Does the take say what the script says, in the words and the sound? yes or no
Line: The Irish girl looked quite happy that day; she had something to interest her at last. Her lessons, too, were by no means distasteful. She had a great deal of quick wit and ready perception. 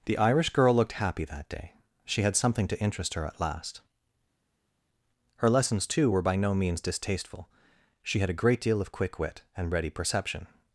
no